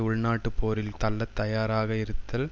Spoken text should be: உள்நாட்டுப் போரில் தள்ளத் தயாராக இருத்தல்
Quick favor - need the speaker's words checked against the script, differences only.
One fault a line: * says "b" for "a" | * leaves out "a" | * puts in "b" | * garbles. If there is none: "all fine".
all fine